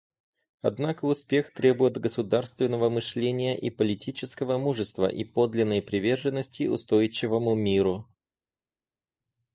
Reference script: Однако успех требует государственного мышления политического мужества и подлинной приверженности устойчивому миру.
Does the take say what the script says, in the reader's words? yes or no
no